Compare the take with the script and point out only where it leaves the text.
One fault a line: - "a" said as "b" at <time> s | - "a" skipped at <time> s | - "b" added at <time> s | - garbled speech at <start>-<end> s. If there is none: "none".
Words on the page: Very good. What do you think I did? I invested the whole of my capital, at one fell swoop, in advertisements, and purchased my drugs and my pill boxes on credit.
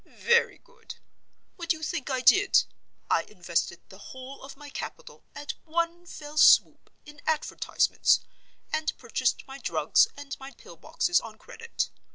none